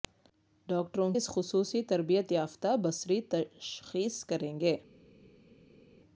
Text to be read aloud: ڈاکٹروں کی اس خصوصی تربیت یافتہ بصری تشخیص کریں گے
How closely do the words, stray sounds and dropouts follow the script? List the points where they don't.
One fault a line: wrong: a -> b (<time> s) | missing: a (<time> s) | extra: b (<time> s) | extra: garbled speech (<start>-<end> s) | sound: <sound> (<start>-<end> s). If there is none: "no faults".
missing: کی (1.1 s)